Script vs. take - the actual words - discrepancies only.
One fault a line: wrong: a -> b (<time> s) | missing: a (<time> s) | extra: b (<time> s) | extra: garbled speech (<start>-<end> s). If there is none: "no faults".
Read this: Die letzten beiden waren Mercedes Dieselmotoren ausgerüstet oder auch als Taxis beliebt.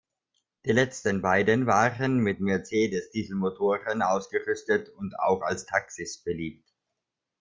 extra: mit (2.2 s)
wrong: oder -> und (4.9 s)